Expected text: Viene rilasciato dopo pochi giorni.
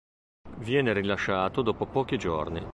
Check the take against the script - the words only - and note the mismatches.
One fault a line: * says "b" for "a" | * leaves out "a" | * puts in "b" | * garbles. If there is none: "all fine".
all fine